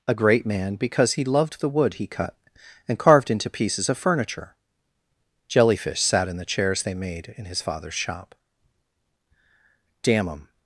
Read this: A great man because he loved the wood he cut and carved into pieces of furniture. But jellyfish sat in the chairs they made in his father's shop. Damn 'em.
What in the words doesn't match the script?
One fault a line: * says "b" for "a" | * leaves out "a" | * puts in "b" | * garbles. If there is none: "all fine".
* leaves out "But"